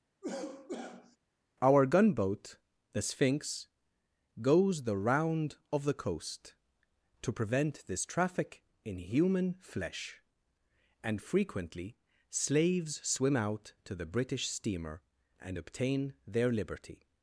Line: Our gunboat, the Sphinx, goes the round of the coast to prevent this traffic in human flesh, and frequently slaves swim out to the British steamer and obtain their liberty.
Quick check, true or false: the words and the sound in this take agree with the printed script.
false